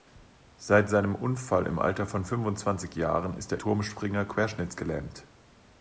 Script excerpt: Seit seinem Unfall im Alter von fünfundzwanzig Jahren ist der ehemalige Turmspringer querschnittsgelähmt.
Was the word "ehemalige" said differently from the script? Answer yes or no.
yes